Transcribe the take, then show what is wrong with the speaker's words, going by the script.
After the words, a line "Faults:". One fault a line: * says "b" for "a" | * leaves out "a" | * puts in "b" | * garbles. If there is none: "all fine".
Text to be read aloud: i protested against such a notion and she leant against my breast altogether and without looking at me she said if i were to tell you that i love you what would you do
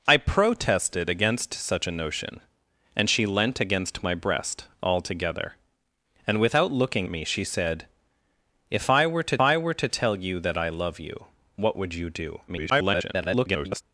i protested against such a notion and she leant against my breast altogether and without looking me she said if i were to i were to tell you that i love you what would you do [garbled]
Faults:
* leaves out "at"
* puts in "i were to"
* garbles